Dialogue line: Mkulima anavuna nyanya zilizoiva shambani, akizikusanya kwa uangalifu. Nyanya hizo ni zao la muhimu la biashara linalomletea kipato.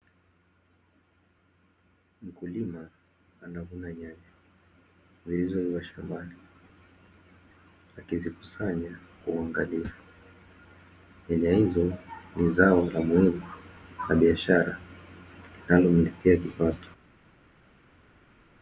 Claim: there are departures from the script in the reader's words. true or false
false